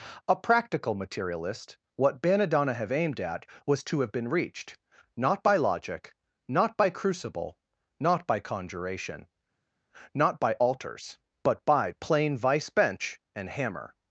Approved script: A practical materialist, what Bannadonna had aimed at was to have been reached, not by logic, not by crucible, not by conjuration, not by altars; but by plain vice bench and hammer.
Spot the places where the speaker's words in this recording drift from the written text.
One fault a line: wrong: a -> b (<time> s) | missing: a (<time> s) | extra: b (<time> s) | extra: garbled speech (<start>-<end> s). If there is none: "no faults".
wrong: had -> have (2.7 s)